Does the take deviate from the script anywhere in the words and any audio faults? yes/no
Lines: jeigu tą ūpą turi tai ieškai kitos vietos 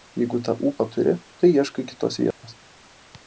yes